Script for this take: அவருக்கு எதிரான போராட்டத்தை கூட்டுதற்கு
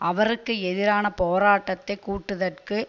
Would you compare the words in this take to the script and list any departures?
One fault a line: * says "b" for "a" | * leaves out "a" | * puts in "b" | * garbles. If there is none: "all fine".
all fine